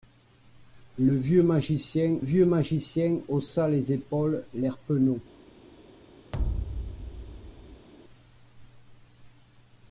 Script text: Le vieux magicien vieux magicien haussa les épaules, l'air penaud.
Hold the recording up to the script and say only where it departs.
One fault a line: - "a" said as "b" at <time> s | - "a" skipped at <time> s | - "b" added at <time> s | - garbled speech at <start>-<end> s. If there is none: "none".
none